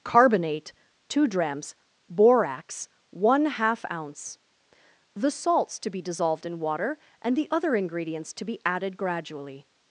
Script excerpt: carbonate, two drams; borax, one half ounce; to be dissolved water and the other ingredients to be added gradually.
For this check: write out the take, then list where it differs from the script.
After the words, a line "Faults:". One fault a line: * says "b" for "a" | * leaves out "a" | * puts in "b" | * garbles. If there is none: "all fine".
carbonate, two drams; borax, one half ounce; the salts to be dissolved in water and the other ingredients to be added gradually.
Faults:
* puts in "the salts"
* puts in "in"